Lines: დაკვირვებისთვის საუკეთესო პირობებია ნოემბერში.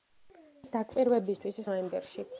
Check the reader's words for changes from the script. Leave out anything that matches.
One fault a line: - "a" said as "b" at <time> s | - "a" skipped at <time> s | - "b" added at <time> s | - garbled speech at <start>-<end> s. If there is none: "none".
- "საუკეთესო პირობებია" skipped at 1.6 s